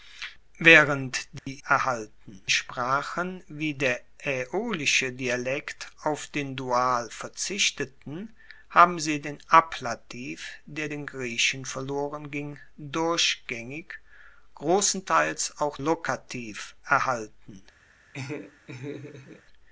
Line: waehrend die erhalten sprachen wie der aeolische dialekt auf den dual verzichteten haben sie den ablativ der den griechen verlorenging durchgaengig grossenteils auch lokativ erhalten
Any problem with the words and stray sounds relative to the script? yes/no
yes